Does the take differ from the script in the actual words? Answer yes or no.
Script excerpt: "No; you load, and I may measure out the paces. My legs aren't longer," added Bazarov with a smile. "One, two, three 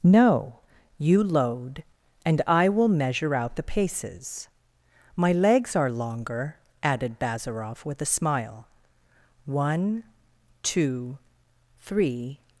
yes